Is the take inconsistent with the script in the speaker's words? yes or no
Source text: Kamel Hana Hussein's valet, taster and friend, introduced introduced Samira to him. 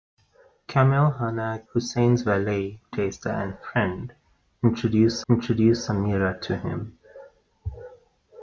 no